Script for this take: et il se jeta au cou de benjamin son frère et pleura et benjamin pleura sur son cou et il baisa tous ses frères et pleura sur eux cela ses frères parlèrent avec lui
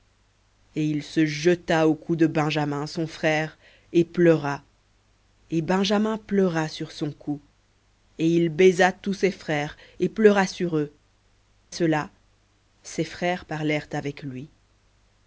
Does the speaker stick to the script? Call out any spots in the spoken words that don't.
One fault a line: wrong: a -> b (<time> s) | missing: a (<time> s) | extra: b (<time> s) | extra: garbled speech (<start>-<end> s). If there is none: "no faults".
no faults